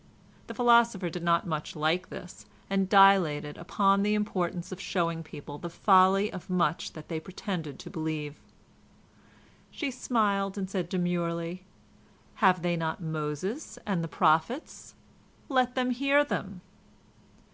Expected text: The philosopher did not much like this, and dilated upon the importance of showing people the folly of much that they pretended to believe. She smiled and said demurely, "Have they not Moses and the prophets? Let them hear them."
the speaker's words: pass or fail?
pass